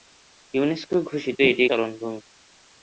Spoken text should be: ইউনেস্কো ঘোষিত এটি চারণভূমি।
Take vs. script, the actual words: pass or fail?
pass